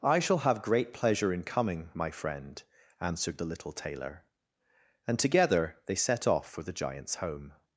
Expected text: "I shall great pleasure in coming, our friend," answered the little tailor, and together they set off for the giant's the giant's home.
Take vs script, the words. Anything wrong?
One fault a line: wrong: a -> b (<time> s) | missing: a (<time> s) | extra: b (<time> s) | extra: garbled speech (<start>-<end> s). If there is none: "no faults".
extra: have (0.4 s)
wrong: our -> my (1.9 s)
missing: the giant's (7.2 s)